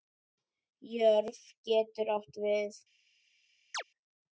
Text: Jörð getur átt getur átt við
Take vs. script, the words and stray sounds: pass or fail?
fail